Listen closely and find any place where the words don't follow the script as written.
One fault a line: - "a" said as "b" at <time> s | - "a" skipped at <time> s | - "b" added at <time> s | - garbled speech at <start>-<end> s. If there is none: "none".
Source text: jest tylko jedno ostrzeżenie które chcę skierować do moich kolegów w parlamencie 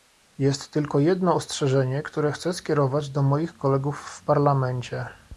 none